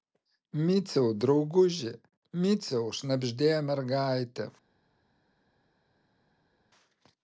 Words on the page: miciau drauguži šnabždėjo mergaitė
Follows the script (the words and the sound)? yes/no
no